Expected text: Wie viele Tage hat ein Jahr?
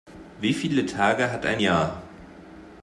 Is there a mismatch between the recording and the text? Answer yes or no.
no